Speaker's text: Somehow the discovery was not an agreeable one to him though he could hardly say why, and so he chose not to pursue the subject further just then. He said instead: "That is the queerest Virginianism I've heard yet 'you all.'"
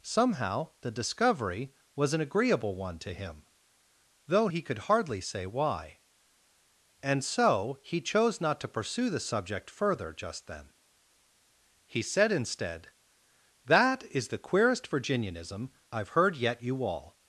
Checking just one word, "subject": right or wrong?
right